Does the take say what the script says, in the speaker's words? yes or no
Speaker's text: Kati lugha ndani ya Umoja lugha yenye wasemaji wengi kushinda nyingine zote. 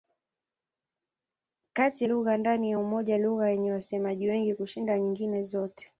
yes